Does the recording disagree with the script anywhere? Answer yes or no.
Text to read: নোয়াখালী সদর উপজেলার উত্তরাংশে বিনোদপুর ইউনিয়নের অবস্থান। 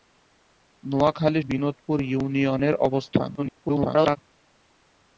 yes